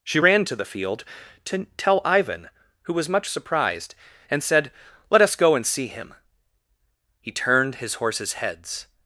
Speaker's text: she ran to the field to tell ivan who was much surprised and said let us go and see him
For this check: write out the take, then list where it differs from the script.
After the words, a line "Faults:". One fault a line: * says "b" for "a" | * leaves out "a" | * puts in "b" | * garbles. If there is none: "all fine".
she ran to the field to tell ivan who was much surprised and said let us go and see him he turned his horses heads
Faults:
* puts in "he turned his horses heads"